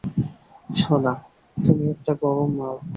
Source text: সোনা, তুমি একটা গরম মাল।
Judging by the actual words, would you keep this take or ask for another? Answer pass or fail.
pass